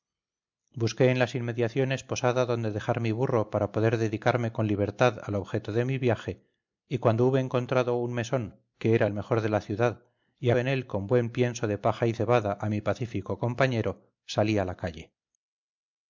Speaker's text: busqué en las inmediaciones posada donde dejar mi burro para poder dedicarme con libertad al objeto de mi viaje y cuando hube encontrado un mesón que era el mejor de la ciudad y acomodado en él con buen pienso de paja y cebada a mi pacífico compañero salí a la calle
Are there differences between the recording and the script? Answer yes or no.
yes